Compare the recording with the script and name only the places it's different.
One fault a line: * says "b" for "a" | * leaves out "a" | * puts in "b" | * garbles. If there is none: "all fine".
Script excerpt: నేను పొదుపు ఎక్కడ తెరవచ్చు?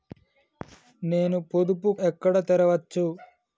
all fine